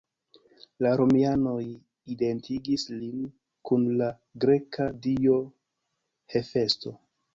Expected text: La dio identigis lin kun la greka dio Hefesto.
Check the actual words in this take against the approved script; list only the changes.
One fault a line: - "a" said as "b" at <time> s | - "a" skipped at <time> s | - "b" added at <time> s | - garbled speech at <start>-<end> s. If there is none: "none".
- "dio" said as "romianoj" at 1.0 s